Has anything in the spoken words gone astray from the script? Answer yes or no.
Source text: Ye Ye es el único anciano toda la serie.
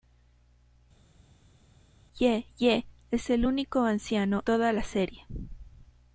no